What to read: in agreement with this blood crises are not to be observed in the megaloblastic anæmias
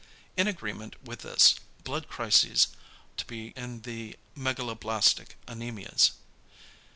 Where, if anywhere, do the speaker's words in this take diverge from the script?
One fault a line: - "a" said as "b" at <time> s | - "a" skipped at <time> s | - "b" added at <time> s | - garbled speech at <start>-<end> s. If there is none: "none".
- "are not" skipped at 2.7 s
- "observed" skipped at 3.6 s